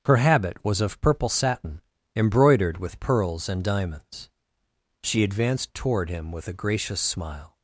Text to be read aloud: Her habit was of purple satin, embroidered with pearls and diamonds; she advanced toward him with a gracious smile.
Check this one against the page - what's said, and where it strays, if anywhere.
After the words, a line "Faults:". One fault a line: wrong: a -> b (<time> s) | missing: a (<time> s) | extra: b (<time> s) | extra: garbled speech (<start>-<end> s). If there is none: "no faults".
Her habit was of purple satin, embroidered with pearls and diamonds; she advanced toward him with a gracious smile.
Faults:
no faults